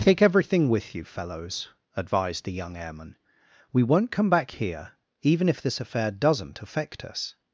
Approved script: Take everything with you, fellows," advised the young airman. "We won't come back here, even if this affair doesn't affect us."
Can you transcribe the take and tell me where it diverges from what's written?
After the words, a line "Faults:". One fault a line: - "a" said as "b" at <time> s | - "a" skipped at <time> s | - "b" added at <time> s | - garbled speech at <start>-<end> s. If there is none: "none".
Take everything with you, fellows," advised the young airman. "We won't come back here, even if this affair doesn't affect us."
Faults:
none